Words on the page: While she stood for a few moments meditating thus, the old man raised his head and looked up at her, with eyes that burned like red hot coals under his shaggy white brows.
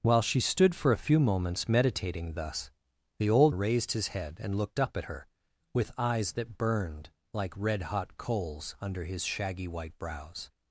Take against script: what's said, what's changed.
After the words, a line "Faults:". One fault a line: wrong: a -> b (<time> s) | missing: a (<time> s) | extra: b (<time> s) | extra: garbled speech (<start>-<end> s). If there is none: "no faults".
While she stood for a few moments meditating thus, the old raised his head and looked up at her, with eyes that burned like red hot coals under his shaggy white brows.
Faults:
missing: man (3.5 s)